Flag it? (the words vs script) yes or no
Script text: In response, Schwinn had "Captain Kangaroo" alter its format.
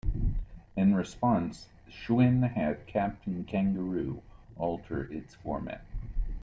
no